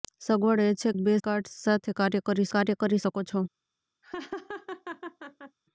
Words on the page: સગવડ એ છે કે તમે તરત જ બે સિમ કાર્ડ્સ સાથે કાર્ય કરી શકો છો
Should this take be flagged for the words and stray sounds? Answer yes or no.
yes